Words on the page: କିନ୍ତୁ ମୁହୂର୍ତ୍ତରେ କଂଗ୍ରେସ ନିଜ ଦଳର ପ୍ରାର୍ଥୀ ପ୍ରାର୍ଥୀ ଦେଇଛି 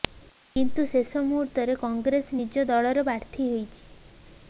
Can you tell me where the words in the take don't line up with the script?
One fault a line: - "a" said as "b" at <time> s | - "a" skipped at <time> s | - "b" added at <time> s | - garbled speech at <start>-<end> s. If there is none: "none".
- "ଶେଷ" added at 0.9 s
- "ପ୍ରାର୍ଥୀ" skipped at 3.5 s